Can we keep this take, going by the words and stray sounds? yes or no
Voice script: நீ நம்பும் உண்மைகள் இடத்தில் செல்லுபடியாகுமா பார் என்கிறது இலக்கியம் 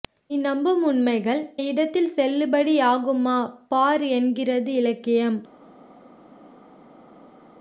yes